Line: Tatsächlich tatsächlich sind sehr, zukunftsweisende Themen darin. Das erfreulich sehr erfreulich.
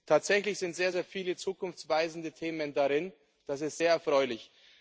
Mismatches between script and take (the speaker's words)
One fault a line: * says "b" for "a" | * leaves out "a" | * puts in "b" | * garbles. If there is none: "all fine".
* leaves out "tatsächlich"
* puts in "sehr viele"
* says "ist" for "erfreulich"